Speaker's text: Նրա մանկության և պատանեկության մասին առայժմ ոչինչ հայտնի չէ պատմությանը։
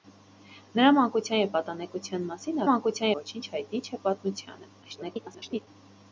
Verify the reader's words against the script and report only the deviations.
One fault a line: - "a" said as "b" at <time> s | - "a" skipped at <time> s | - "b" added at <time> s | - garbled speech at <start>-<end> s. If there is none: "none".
- "առայժմ" said as "մանկության" at 2.7 s
- garbled speech at 4.8-5.7 s